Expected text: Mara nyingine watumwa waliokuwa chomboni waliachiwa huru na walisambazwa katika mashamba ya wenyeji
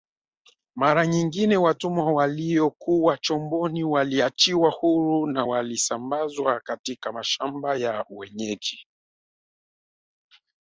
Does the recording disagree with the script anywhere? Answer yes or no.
no